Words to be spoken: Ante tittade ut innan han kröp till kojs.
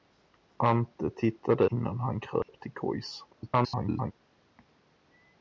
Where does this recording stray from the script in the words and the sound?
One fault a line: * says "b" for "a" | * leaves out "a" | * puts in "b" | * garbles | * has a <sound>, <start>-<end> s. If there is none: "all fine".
* leaves out "ut"
* has a dropout, 2.4-2.5 s
* garbles